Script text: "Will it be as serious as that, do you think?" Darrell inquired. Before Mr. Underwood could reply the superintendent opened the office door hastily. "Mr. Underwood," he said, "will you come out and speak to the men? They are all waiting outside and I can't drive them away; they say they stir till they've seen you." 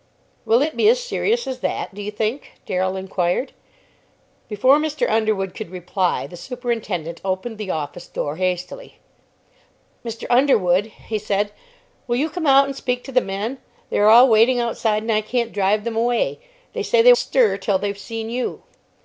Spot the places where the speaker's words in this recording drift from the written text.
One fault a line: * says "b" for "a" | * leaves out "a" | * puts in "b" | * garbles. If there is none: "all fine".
all fine